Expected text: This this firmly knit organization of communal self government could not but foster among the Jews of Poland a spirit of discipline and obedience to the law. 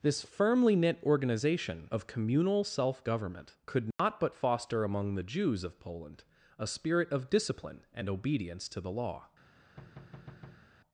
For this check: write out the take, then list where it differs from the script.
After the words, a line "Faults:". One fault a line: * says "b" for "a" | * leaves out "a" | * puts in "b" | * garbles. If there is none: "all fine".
This firmly knit organization of communal self government could not but foster among the Jews of Poland a spirit of discipline and obedience to the law.
Faults:
* leaves out "this"